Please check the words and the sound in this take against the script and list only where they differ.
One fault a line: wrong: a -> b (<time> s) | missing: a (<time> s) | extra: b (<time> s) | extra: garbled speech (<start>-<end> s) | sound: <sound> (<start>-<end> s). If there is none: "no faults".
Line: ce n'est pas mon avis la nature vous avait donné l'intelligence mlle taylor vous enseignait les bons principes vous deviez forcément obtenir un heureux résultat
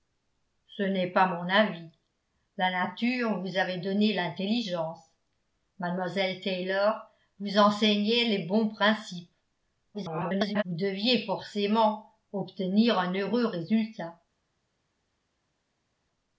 extra: garbled speech (9.9-10.6 s)